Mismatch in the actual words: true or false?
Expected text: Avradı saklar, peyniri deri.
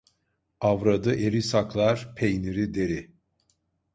true